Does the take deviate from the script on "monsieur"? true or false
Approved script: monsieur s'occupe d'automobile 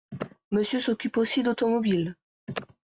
false